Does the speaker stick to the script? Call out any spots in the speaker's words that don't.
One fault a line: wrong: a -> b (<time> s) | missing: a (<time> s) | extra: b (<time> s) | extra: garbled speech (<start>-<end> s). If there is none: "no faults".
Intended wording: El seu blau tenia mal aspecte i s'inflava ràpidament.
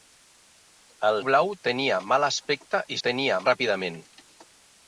missing: seu (1.2 s)
wrong: s'inflava -> tenia (3.1 s)